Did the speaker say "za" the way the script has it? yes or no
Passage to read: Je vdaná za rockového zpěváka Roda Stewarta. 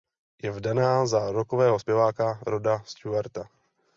yes